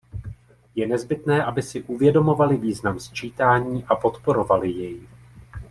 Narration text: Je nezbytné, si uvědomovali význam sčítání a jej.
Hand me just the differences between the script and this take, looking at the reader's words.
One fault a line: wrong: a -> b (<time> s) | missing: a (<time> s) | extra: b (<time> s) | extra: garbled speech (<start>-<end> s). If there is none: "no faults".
extra: aby (1.4 s)
extra: podporovali (4.0 s)